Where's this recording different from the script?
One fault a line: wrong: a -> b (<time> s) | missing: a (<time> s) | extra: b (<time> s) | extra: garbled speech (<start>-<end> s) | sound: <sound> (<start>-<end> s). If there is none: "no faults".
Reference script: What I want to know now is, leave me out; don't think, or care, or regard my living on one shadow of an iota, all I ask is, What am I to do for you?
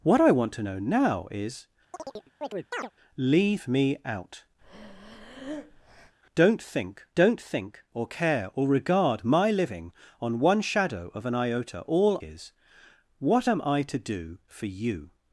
sound: chirp (1.9-2.9 s)
sound: breath (4.6-6.2 s)
extra: don't think (7.1 s)
missing: I ask (12.2 s)